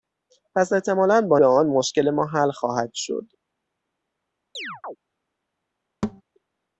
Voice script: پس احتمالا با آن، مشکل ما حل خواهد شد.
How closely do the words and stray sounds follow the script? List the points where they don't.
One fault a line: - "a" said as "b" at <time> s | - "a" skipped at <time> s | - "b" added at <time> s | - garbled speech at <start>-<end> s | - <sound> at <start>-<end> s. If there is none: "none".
- chirp at 4.5-5.0 s
- thud at 6.0-6.2 s